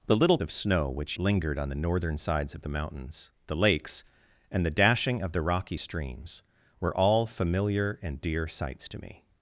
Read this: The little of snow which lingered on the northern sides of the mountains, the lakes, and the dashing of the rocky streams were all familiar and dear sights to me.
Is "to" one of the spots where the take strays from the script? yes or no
no